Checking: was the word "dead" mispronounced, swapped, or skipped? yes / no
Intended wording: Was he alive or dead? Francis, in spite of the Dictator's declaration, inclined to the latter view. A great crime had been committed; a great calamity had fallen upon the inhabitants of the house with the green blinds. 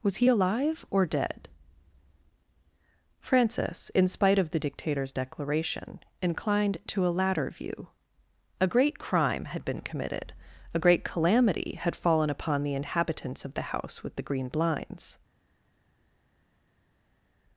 no